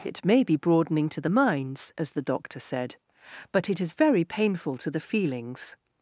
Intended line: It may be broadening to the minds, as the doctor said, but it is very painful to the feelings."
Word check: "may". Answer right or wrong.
right